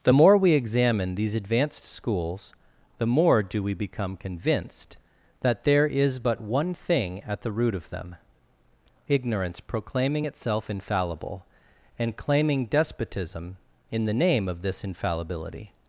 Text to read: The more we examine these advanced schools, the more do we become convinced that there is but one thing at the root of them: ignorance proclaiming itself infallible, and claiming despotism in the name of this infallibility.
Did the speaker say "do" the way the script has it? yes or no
yes